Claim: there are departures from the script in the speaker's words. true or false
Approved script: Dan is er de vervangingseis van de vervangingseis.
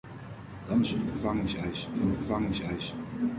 false